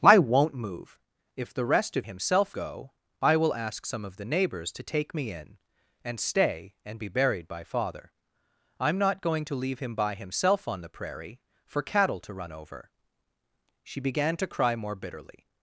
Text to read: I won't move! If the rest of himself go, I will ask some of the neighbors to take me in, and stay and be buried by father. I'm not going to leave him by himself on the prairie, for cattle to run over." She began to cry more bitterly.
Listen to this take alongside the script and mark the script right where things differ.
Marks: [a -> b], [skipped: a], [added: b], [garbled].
I won't move! If the rest of himself go, I will ask some of the neighbors to take me in, and stay and be buried by father. I'm not going to leave him by himself on the prairie, for cattle to run over." She began to cry more bitterly.